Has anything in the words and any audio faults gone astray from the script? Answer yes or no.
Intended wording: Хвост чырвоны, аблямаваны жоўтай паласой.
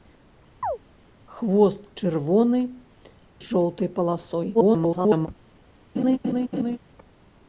yes